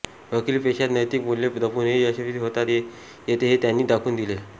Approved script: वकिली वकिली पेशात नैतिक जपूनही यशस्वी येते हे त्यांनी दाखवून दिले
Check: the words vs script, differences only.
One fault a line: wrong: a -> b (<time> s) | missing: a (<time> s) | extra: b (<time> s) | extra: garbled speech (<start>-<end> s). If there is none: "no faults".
missing: वकिली (0.6 s)
extra: मूल्ये (1.2 s)
extra: होता (2.4 s)